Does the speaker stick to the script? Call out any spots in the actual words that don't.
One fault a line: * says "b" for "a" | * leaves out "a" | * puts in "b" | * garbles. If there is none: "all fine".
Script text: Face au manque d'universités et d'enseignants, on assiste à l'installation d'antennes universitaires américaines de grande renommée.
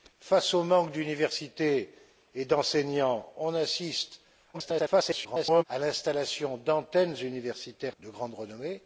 * garbles
* leaves out "américaines"